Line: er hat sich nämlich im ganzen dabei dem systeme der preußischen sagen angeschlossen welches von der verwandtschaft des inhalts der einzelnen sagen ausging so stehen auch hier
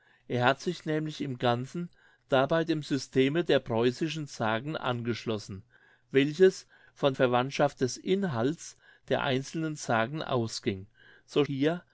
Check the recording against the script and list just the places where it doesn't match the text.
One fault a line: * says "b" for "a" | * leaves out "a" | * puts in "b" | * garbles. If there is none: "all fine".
* leaves out "der"
* leaves out "stehen auch"